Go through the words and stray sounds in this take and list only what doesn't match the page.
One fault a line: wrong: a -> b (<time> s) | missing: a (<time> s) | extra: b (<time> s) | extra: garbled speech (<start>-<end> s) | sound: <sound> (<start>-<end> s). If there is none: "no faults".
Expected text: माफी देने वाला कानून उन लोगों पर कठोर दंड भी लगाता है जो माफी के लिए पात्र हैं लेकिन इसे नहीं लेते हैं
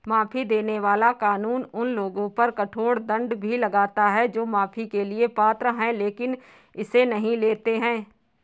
no faults